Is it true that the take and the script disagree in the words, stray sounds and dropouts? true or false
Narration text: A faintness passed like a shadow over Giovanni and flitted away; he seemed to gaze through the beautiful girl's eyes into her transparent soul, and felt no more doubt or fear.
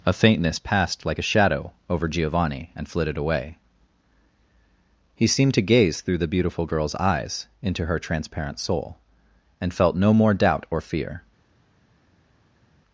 false